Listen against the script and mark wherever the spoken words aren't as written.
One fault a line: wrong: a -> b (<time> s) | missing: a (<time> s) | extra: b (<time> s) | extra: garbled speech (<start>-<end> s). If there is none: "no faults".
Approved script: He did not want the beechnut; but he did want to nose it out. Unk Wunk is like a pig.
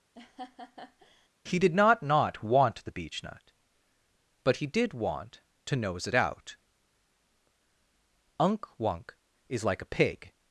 extra: not (2.0 s)